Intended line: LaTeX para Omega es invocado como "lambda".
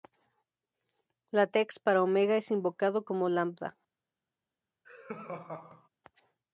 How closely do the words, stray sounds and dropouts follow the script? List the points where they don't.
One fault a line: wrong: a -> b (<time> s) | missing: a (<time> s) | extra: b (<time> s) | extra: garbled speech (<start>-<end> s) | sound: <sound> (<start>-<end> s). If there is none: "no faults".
sound: laugh (4.8-5.9 s)